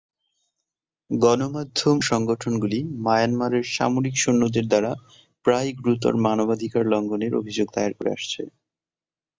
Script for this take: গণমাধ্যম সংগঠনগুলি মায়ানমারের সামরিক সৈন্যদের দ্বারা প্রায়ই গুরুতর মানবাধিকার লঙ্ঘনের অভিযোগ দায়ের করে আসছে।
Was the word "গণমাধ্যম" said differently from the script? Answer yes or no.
no